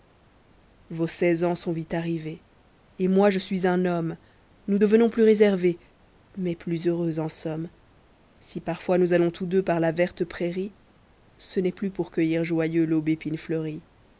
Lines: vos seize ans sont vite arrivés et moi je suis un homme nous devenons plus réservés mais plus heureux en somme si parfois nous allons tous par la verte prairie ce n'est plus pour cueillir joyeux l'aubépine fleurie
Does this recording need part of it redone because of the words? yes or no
yes